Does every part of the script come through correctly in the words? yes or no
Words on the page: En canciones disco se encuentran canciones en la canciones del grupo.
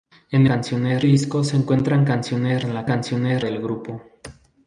yes